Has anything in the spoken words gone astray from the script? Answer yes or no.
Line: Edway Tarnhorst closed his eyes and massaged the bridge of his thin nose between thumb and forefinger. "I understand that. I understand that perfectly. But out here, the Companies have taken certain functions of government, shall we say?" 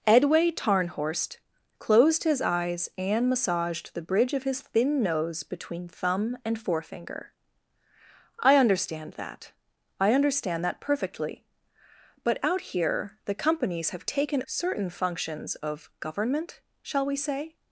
no